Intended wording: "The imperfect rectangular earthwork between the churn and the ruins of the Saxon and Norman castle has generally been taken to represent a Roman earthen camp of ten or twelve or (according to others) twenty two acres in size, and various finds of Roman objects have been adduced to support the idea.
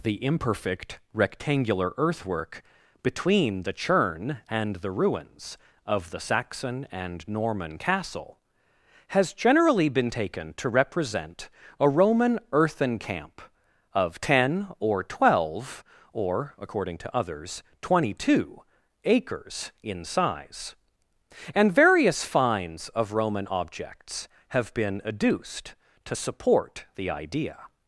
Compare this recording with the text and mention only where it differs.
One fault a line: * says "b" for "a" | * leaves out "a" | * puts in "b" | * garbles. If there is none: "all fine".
all fine